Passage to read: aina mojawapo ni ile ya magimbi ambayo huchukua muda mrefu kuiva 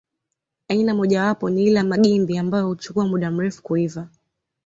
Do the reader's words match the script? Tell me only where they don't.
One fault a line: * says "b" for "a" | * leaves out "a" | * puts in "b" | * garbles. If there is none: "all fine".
all fine